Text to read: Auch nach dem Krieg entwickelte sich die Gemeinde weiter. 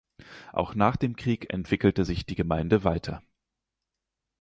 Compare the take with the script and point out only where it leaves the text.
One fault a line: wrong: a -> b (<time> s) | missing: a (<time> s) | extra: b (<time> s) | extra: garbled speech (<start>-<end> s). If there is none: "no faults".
no faults